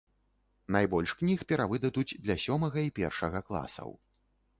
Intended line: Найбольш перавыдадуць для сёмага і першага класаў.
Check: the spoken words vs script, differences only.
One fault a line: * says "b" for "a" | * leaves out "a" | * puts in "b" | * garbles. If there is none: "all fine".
* puts in "кніг"